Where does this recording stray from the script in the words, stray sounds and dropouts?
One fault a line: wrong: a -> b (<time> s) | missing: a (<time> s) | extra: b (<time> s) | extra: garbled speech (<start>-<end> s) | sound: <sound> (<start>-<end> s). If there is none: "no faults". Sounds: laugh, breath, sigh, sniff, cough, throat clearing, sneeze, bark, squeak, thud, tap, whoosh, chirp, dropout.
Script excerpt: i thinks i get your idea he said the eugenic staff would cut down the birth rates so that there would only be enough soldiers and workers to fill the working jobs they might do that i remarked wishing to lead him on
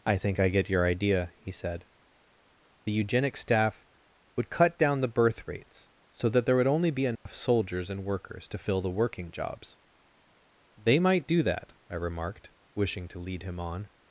wrong: thinks -> think (0.2 s)
sound: dropout (7.2-7.3 s)